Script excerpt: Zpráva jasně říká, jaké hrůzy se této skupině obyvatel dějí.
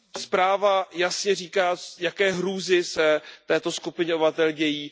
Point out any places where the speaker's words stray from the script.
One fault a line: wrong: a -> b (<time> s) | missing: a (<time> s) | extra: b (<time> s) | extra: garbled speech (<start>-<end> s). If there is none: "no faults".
no faults